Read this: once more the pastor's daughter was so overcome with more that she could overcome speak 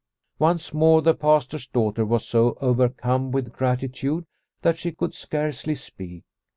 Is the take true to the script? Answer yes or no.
no